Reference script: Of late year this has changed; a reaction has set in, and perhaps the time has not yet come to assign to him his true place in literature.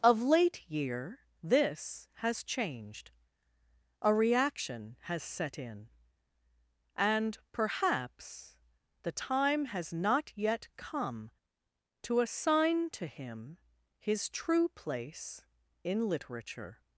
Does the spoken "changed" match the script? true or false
true